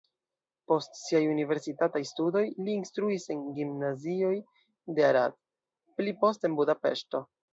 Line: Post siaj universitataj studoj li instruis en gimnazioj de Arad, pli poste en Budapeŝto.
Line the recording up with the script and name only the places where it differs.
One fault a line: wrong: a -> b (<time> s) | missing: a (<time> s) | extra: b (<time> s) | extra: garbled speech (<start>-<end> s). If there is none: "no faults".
no faults